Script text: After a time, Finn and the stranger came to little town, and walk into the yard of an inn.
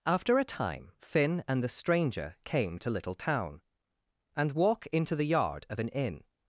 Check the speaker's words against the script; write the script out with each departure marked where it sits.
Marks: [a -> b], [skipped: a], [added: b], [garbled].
After a time, Finn and the stranger came to little town, and walk into the yard of an inn.